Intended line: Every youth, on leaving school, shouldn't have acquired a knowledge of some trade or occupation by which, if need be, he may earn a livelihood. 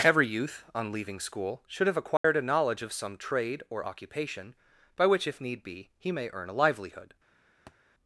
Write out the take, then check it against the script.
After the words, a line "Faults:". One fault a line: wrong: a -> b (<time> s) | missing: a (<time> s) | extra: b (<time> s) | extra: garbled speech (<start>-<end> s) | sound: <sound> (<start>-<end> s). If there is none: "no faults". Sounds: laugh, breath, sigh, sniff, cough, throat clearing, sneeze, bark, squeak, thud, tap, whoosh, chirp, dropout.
Every youth, on leaving school, should have acquired a knowledge of some trade or occupation by which, if need be, he may earn a livelihood.
Faults:
wrong: shouldn't -> should (1.7 s)
sound: dropout (2.2-2.2 s)
sound: thud (7.7-7.8 s)